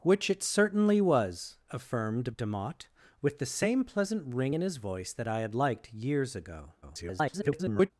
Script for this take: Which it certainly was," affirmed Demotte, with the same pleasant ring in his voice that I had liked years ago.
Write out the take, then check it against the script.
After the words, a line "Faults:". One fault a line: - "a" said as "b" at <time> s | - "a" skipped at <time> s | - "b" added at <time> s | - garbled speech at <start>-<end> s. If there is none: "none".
Which it certainly was," affirmed Demotte, with the same pleasant ring in his voice that I had liked years ago. [garbled]
Faults:
- garbled speech at 6.8-7.9 s